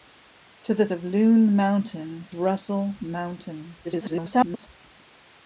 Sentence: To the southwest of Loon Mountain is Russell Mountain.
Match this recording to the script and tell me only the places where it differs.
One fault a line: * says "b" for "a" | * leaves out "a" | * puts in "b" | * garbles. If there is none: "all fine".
* leaves out "southwest"
* leaves out "is"
* garbles